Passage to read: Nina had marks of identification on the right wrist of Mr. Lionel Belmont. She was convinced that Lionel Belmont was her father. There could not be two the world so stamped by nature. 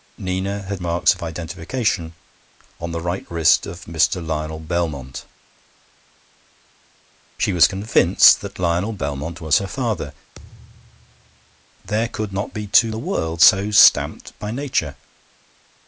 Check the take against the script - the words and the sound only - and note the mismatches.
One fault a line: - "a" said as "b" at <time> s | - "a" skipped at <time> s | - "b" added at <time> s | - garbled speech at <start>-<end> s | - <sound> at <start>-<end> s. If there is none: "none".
- thud at 10.4-11.7 s